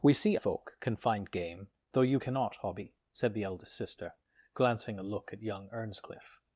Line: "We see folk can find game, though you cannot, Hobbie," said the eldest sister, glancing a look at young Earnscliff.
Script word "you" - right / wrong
right